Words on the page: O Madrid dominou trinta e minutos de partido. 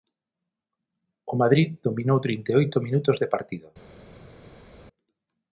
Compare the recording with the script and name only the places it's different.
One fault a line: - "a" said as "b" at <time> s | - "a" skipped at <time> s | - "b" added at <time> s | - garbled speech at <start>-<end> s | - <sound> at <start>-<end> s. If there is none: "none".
- "oito" added at 2.6 s